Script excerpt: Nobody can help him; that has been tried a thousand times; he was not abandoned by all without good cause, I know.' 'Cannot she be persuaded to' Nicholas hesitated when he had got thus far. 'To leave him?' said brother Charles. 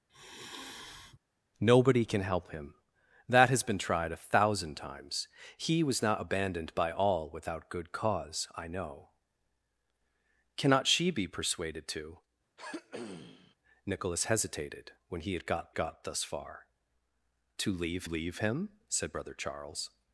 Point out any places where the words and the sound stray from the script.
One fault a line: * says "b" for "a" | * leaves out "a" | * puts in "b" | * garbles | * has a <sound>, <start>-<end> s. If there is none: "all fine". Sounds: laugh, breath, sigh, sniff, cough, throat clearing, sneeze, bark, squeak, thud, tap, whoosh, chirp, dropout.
* has a sigh, 0.1-1.2 s
* has a throat clearing, 12.6-13.5 s
* puts in "got"
* puts in "leave"